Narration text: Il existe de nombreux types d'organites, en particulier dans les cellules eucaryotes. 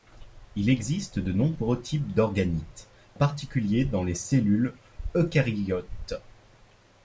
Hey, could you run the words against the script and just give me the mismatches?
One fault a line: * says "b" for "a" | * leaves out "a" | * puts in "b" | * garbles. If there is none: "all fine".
* leaves out "en"